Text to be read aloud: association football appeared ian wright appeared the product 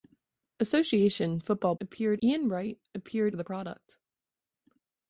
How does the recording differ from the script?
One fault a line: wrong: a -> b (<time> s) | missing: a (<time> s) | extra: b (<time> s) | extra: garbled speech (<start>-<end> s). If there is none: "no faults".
no faults